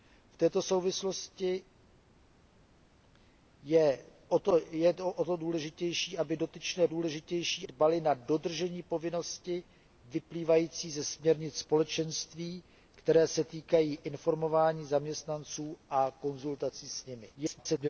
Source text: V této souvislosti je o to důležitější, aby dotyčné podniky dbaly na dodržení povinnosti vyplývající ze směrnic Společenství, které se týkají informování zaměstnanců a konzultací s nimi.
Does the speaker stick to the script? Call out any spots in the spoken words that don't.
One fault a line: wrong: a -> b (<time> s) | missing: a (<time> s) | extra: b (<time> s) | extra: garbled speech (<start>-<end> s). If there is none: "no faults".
wrong: podniky -> důležitější (6.9 s)
extra: garbled speech (17.3-17.9 s)